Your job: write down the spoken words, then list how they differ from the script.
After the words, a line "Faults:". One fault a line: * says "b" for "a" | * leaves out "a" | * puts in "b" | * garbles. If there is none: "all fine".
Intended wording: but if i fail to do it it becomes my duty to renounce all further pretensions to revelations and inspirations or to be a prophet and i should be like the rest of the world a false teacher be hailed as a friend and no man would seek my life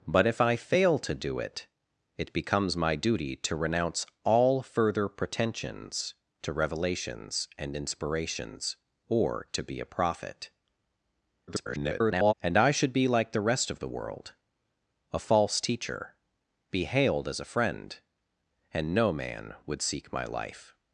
but if i fail to do it it becomes my duty to renounce all further pretensions to revelations and inspirations or to be a prophet [garbled] and i should be like the rest of the world a false teacher be hailed as a friend and no man would seek my life
Faults:
* garbles